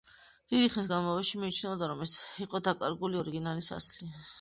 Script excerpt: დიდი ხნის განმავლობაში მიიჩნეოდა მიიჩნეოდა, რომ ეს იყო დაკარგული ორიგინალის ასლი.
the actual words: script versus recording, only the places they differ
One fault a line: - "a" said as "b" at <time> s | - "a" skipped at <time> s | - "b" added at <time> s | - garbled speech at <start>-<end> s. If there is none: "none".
- "მიიჩნეოდა" skipped at 1.9 s